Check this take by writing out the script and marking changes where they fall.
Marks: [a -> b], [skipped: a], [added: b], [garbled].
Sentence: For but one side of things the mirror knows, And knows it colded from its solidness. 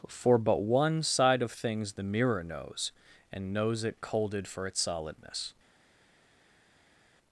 For but one side of things the mirror knows, And knows it colded [from -> for] its solidness.